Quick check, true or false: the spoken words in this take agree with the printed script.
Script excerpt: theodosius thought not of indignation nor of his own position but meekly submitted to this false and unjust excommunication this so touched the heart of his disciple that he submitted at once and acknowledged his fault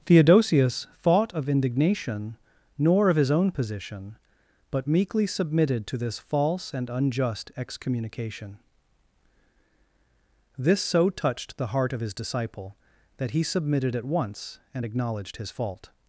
false